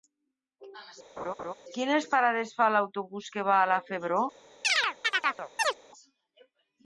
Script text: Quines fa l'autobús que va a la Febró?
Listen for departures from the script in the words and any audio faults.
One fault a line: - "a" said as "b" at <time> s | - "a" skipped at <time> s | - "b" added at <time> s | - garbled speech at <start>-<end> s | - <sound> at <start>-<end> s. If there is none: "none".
- laugh at 1.2-1.5 s
- "parades" added at 2.1 s
- chirp at 4.6-5.8 s